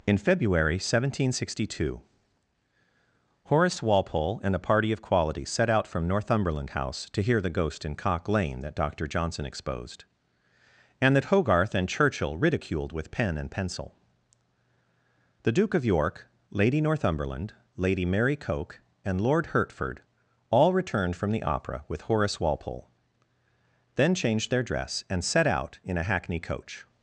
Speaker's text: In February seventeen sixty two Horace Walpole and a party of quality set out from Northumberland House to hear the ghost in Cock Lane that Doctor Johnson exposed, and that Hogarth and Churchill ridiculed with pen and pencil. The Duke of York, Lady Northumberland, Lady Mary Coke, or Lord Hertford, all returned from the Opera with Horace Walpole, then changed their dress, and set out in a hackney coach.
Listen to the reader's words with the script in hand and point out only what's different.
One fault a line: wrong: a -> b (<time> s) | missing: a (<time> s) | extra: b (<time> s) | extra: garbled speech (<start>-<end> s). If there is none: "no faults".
wrong: or -> and (19.0 s)